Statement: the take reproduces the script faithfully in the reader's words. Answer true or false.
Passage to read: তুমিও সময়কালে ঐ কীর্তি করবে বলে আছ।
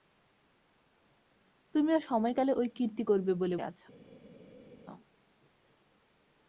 true